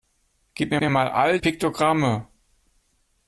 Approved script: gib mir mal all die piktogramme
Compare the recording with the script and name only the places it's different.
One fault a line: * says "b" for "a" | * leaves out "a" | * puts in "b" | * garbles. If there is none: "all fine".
* puts in "mir"
* leaves out "die"